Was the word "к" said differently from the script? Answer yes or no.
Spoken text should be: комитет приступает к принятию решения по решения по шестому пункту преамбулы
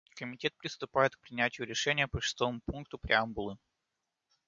no